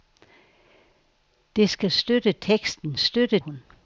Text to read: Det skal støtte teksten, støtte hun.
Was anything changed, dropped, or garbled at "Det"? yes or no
no